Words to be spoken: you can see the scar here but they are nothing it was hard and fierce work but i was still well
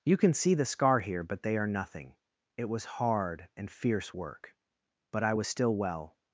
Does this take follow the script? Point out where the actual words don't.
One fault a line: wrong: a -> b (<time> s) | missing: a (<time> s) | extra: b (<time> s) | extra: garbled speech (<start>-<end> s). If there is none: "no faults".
no faults